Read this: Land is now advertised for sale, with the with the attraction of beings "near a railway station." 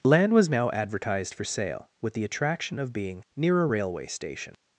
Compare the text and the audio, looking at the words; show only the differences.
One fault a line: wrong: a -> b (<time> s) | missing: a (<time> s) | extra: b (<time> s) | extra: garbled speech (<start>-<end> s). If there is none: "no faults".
wrong: is -> was (0.3 s)
missing: with the (2.2 s)
wrong: beings -> being (2.9 s)